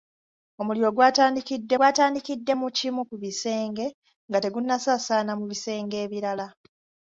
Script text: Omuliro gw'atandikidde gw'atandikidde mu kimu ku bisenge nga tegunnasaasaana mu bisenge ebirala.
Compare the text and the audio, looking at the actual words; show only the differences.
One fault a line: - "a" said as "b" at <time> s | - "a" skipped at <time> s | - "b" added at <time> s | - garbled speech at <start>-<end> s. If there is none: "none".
none